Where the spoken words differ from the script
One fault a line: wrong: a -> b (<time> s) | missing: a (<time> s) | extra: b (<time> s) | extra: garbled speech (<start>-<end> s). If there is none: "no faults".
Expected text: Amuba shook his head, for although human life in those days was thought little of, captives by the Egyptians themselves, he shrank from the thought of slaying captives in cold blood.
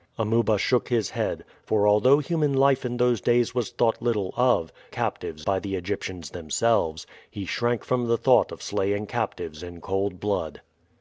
no faults